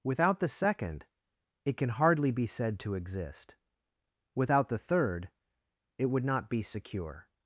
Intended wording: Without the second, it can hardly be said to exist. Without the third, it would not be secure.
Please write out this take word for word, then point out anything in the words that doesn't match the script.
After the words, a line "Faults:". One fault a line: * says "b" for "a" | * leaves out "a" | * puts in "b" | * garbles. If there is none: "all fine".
Without the second, it can hardly be said to exist. Without the third, it would not be secure.
Faults:
all fine